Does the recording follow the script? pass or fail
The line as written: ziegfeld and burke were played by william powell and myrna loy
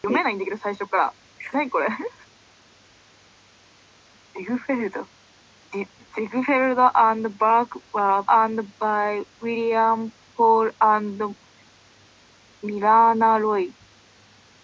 fail